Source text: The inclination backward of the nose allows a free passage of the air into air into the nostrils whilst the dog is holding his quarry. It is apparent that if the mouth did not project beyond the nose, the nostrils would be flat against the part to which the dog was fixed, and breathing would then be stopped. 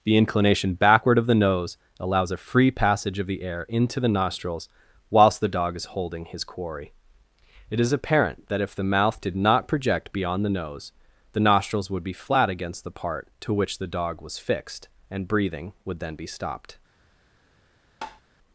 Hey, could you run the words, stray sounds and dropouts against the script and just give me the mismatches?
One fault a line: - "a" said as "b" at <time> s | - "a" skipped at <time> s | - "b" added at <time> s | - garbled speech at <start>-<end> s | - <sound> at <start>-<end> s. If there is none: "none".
- "air into" skipped at 4.0 s
- tap at 18.0-18.2 s